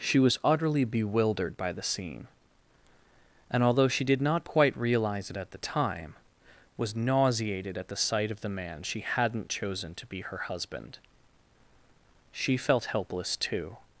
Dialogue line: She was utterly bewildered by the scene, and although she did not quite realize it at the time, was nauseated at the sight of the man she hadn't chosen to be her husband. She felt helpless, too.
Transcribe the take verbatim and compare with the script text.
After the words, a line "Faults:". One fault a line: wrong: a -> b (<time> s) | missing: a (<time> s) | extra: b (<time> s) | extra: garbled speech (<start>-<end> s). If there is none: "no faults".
She was utterly bewildered by the scene, and although she did not quite realize it at the time, was nauseated at the sight of the man she hadn't chosen to be her husband. She felt helpless, too.
Faults:
no faults